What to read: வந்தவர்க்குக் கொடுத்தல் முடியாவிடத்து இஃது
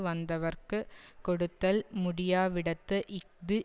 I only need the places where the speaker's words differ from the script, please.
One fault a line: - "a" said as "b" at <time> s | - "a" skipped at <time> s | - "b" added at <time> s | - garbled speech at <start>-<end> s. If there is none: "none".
none